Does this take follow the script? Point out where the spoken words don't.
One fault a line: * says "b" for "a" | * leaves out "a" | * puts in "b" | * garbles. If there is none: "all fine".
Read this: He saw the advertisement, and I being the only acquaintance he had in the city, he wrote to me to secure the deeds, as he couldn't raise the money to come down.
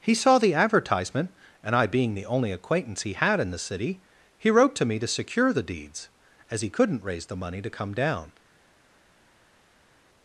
all fine